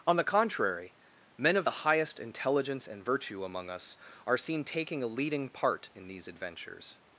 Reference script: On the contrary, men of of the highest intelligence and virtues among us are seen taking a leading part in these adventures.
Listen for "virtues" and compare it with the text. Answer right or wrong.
wrong